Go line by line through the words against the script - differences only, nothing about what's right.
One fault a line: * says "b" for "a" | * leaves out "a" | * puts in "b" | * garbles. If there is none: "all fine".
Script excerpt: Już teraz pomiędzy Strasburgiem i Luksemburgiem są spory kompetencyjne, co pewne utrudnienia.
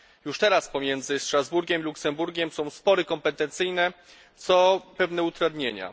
all fine